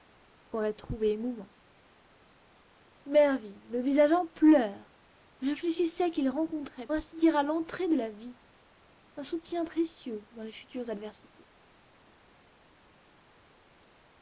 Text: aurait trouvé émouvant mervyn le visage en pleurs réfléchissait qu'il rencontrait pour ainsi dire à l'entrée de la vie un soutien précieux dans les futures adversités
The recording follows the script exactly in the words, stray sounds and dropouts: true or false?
false